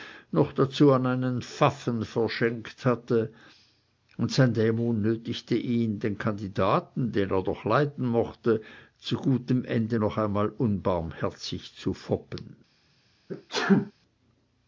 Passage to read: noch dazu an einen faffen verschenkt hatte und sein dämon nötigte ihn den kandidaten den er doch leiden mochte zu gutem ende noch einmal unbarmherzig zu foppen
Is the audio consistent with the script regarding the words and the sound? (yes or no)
no